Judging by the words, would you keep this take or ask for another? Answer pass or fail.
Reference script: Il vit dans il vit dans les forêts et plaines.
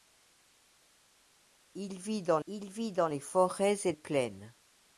pass